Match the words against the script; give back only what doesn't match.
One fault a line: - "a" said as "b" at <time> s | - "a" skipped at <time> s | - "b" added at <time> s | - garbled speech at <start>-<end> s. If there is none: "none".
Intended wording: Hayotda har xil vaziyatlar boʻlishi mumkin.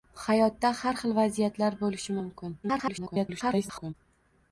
- garbled speech at 2.6-3.9 s